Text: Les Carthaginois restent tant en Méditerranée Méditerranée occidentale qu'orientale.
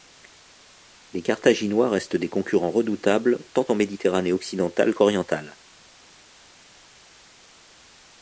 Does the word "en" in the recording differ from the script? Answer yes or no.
no